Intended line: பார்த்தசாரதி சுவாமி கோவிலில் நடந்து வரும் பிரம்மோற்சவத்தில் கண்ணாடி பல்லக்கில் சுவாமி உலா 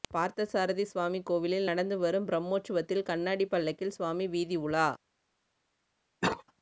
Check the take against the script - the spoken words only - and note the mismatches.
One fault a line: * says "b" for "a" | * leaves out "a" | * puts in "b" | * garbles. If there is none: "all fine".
* puts in "வீதி"